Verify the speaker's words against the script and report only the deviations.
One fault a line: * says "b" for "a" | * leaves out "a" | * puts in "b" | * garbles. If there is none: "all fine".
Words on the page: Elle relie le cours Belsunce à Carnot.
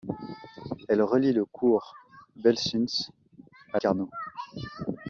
all fine